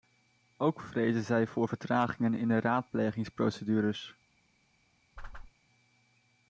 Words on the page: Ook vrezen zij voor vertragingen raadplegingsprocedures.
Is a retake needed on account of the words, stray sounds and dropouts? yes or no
yes